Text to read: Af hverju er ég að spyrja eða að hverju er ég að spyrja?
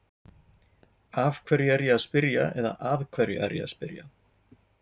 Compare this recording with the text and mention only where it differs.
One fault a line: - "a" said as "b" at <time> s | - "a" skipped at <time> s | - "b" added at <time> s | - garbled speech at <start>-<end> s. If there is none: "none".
none